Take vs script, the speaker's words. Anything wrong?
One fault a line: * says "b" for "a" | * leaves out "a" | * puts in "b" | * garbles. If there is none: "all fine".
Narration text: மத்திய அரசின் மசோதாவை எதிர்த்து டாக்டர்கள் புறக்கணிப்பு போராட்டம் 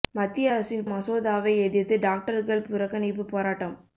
all fine